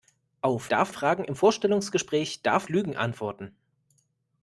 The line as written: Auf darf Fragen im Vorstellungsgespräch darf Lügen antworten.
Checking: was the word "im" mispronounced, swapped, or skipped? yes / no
no